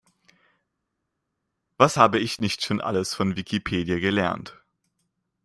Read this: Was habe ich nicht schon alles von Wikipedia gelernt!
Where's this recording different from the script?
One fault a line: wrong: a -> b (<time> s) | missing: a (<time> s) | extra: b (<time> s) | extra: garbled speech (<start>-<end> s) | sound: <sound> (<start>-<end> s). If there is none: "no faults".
no faults